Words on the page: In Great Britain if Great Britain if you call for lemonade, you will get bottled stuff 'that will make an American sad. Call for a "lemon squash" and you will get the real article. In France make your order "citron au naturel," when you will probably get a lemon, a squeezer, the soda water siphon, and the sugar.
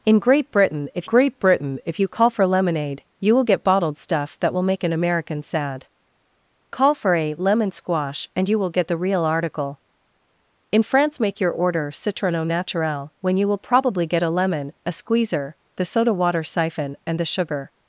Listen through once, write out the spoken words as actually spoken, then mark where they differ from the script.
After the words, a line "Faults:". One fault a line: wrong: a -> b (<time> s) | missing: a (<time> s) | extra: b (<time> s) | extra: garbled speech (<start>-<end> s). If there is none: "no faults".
In Great Britain if Great Britain if you call for lemonade, you will get bottled stuff 'that will make an American sad. Call for a "lemon squash" and you will get the real article. In France make your order "citron au naturel," when you will probably get a lemon, a squeezer, the soda water siphon, and the sugar.
Faults:
no faults